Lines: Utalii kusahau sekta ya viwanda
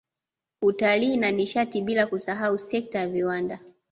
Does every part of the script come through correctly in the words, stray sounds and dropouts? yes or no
no